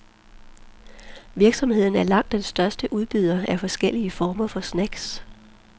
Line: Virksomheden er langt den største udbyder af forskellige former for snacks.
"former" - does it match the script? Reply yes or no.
yes